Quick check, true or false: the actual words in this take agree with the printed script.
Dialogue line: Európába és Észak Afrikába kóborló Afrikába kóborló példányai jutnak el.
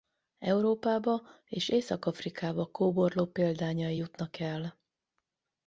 false